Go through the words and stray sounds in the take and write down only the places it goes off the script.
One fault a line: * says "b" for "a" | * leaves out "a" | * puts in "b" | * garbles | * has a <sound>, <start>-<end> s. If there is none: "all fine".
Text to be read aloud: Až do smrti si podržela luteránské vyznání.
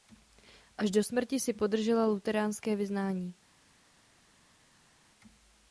all fine